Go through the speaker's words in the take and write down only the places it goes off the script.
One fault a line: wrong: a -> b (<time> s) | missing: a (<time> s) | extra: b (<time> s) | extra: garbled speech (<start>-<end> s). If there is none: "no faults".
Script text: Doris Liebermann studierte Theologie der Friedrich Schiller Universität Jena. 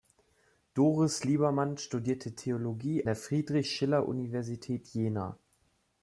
no faults